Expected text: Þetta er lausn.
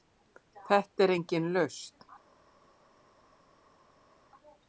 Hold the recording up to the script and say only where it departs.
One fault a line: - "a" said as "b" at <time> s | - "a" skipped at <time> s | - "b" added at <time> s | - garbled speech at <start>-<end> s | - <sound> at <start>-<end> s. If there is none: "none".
- "engin" added at 1.2 s